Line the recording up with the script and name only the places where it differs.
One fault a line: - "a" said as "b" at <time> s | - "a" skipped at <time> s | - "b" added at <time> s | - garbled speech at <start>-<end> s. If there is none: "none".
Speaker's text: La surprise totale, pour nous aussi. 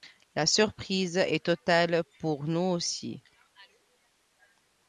- "est" added at 1.2 s